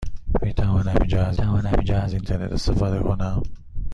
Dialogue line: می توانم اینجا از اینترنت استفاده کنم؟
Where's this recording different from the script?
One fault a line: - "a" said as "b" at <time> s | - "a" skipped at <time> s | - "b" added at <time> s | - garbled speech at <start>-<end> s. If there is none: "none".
- "توانم اینجا از" added at 1.3 s